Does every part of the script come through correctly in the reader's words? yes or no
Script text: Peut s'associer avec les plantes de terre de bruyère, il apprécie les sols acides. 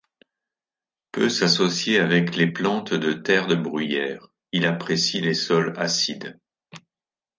yes